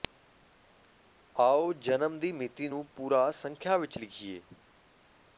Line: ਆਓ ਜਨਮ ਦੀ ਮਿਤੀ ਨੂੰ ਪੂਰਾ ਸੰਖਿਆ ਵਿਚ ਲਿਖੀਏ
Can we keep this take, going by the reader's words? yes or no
yes